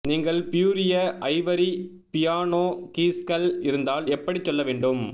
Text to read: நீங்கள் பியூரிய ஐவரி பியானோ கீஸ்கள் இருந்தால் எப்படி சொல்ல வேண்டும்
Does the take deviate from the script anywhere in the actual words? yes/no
no